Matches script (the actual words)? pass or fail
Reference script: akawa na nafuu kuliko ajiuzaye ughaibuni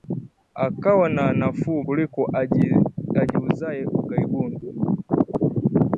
pass